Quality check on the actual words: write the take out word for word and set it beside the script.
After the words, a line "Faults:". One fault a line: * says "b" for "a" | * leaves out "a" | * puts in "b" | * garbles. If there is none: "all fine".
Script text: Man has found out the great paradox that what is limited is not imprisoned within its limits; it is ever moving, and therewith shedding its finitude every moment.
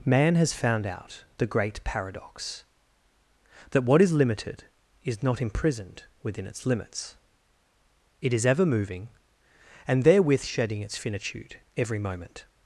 Man has found out the great paradox that what is limited is not imprisoned within its limits; it is ever moving, and therewith shedding its finitude every moment.
Faults:
all fine